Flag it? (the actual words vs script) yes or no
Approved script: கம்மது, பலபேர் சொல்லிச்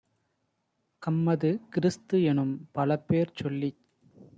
yes